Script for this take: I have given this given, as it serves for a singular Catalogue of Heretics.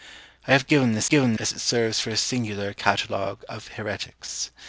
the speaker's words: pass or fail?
pass